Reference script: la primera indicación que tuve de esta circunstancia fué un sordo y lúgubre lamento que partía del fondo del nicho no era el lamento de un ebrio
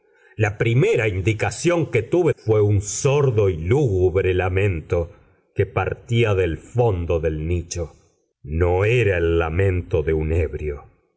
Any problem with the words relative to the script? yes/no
yes